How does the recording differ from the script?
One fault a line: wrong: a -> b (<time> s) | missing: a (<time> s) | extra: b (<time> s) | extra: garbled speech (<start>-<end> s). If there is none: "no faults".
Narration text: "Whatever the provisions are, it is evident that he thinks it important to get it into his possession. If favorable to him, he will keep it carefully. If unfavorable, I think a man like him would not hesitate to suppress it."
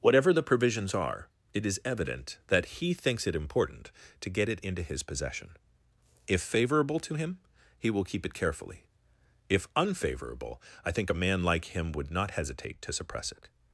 no faults